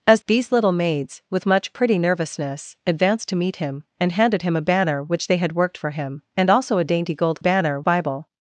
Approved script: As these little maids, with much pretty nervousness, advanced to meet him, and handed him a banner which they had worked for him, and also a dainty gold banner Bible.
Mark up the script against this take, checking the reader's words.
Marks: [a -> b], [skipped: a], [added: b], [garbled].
As these little maids, with much pretty nervousness, advanced to meet him, and handed him a banner which they had worked for him, and also a dainty gold banner Bible.